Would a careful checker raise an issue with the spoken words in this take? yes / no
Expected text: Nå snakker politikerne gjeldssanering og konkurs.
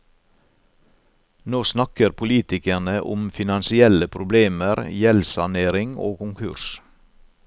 yes